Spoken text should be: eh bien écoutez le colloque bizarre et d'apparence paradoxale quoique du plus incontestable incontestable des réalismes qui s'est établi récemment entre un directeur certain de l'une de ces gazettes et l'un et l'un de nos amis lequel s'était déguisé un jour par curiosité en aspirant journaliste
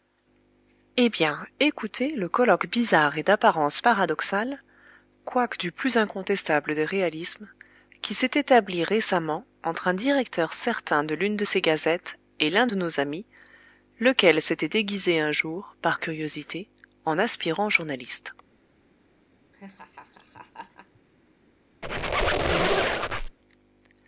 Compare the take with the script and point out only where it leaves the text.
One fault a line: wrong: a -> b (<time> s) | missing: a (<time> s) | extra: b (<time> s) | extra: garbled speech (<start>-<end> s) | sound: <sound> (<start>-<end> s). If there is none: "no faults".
missing: incontestable (6.8 s)
missing: et l'un (12.7 s)
sound: laugh (19.5-21.0 s)
sound: squeak (21.8-23.4 s)